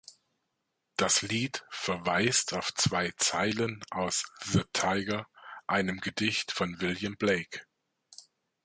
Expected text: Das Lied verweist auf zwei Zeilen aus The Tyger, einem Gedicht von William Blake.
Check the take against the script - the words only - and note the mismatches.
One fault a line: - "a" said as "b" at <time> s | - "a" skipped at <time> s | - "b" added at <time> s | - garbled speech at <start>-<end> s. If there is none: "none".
none